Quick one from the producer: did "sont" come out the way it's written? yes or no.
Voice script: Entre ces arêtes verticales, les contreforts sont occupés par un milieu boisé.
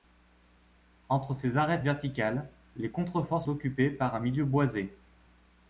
no